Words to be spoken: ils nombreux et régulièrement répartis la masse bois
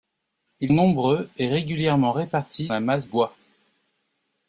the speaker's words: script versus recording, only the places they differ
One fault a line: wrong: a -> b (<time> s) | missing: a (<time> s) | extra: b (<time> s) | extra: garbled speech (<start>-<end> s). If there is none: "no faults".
no faults